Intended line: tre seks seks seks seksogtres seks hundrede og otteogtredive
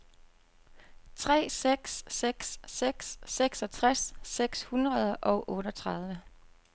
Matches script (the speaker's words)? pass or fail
pass